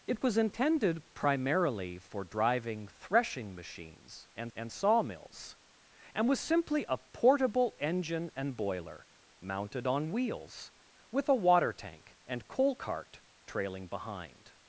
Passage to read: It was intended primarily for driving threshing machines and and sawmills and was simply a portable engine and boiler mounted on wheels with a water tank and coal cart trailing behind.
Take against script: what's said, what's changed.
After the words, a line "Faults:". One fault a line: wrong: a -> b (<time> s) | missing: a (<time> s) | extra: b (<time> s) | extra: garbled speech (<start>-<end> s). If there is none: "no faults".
It was intended primarily for driving threshing machines and and sawmills and was simply a portable engine and boiler mounted on wheels with a water tank and coal cart trailing behind.
Faults:
no faults